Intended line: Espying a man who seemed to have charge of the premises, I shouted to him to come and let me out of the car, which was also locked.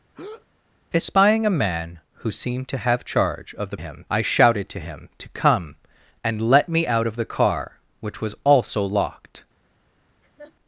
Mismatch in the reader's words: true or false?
true